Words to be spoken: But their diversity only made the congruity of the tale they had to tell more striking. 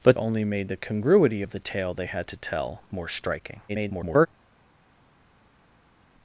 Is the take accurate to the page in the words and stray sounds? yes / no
no